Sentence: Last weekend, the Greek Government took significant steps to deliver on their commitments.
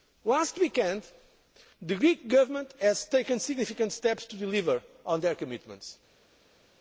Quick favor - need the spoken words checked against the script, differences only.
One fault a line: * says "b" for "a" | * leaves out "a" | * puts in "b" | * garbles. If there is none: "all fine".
all fine